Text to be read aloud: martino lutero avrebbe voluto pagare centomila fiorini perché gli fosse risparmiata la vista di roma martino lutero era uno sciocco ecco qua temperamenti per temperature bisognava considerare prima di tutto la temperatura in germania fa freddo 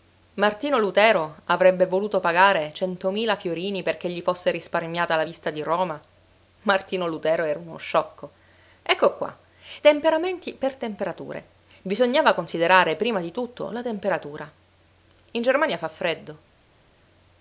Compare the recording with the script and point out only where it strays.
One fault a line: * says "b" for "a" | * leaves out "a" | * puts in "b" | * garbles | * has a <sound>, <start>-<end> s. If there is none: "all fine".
all fine